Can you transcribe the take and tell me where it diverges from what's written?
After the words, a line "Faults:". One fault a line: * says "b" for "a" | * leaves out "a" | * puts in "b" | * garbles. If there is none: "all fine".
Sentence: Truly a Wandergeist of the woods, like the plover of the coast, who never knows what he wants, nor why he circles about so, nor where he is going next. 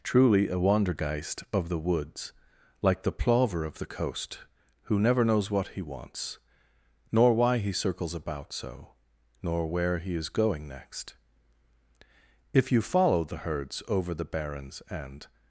Truly a Wandergeist of the woods, like the plover of the coast, who never knows what he wants, nor why he circles about so, nor where he is going next. If you follow the herds over the barrens and
Faults:
* puts in "If you follow the herds over the barrens and"